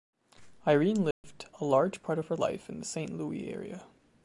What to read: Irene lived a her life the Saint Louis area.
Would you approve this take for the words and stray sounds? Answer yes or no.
no